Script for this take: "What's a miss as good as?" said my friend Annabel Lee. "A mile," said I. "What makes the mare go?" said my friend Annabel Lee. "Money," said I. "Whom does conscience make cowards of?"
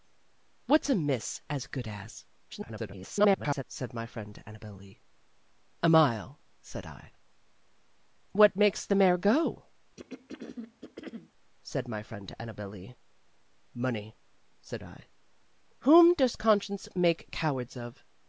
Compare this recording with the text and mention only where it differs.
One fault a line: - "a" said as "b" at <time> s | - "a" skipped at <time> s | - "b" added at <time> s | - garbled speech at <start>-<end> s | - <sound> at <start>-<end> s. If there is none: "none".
- garbled speech at 2.5-3.6 s
- throat clearing at 10.0-11.3 s